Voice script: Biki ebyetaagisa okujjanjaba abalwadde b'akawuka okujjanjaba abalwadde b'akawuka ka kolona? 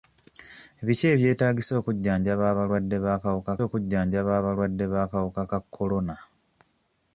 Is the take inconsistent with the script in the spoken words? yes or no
no